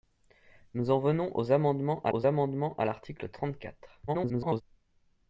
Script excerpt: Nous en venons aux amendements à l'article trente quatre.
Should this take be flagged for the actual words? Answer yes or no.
yes